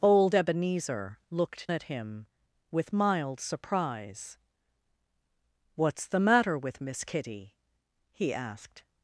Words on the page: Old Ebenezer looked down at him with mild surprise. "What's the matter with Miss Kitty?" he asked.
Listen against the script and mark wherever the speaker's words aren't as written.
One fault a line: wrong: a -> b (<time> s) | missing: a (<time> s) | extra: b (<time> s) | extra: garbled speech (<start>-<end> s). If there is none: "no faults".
missing: down (1.7 s)